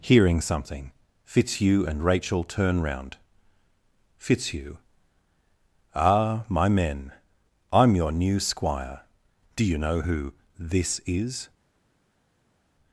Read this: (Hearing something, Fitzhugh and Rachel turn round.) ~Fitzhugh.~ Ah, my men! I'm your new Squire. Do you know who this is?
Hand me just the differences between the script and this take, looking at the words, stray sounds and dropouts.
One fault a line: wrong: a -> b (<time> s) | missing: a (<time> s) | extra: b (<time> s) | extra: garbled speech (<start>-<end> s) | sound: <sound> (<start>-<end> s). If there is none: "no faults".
no faults